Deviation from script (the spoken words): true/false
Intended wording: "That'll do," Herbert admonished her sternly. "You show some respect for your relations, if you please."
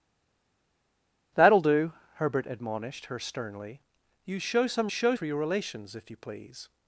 true